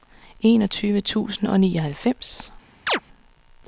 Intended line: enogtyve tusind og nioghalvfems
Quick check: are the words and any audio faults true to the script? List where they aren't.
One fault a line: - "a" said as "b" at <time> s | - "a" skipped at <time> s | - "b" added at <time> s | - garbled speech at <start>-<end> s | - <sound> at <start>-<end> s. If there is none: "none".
- chirp at 2.9-3.0 s